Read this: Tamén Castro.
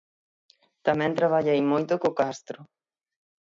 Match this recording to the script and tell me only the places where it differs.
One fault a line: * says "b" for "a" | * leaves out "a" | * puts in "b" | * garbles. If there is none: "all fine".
* puts in "traballei moito co"